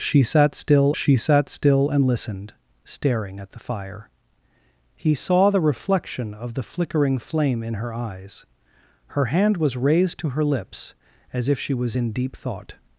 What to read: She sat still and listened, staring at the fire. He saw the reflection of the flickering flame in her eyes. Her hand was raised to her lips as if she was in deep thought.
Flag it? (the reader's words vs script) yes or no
yes